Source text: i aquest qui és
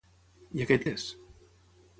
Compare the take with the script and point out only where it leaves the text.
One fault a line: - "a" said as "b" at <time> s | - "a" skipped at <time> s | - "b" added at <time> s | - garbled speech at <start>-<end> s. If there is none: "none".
- "qui" skipped at 0.9 s